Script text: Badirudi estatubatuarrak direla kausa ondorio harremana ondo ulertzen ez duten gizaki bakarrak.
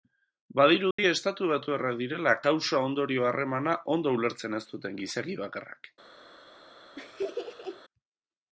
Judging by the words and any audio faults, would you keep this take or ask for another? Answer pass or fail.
fail